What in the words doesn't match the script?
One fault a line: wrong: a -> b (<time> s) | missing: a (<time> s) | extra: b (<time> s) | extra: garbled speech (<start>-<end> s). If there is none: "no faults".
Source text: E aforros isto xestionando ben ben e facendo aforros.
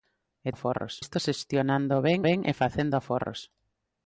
no faults